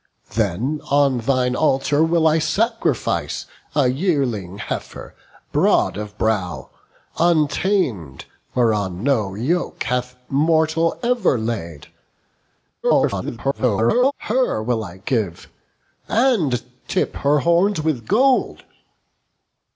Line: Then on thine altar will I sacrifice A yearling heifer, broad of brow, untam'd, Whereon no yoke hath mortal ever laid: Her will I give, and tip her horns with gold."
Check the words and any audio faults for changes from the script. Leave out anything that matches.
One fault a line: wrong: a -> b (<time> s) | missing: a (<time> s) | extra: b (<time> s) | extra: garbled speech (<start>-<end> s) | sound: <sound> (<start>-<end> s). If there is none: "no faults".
extra: garbled speech (12.8-14.1 s)